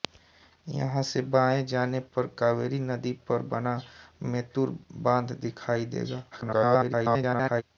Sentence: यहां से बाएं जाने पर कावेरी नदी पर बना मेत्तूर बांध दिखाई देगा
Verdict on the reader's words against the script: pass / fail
fail